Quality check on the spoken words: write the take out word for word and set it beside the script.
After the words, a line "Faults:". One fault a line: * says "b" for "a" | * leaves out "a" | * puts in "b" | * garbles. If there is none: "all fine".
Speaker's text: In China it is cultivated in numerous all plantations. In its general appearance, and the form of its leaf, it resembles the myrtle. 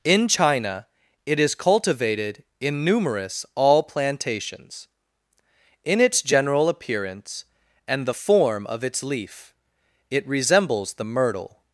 In China it is cultivated in numerous all plantations. In its general appearance, and the form of its leaf, it resembles the myrtle.
Faults:
all fine